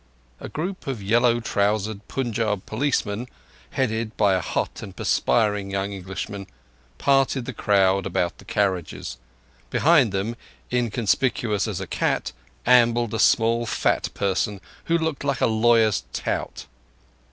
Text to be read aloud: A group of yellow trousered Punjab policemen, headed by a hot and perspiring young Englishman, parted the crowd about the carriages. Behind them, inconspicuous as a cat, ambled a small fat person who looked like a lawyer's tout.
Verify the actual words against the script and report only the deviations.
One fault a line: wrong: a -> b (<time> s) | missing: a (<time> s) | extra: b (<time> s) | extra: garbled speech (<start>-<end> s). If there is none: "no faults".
no faults